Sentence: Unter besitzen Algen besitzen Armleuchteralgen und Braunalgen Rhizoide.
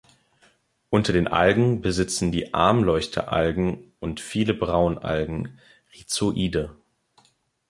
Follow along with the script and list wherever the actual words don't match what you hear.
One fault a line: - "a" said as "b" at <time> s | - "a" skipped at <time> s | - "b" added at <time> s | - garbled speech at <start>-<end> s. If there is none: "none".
- "besitzen" said as "den" at 1.1 s
- "die" added at 2.3 s
- "viele" added at 4.2 s